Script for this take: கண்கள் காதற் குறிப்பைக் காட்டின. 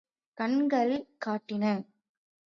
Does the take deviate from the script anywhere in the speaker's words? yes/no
yes